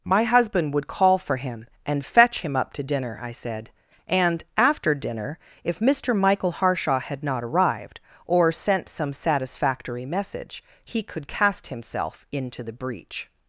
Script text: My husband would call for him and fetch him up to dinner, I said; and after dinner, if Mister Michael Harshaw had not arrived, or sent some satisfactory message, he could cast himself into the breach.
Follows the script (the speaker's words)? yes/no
yes